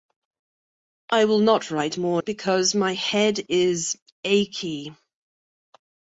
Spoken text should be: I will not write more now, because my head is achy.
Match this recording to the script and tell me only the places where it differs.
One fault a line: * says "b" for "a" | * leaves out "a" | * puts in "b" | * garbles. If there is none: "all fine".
* leaves out "now"